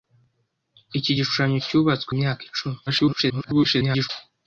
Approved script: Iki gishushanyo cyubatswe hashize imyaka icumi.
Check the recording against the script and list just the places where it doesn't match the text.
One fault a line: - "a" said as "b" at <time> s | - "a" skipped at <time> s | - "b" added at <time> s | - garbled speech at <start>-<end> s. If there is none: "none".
- "hashize" skipped at 2.1 s
- garbled speech at 2.9-4.1 s